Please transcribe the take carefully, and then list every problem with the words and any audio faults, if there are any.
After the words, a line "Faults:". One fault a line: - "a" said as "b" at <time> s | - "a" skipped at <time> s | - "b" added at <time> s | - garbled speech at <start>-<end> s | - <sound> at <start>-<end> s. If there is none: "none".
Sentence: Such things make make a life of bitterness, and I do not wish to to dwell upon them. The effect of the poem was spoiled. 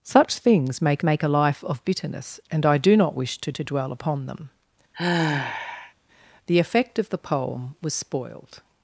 Such things make make a life of bitterness, and I do not wish to to dwell upon them. The effect of the poem was spoiled.
Faults:
- sigh at 4.9-5.9 s